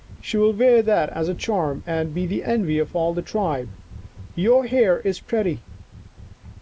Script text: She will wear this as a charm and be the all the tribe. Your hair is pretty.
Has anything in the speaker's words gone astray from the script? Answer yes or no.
yes